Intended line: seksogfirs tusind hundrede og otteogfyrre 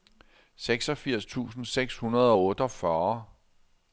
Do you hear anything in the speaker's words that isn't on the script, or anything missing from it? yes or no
yes